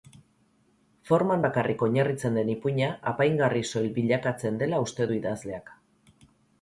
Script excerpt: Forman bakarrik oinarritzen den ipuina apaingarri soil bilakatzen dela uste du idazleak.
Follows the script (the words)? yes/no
yes